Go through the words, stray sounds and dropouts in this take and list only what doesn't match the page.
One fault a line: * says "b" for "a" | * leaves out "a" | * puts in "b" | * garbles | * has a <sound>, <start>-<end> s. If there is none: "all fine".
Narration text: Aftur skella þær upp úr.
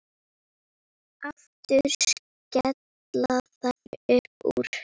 * has a dropout, 3.8-3.9 s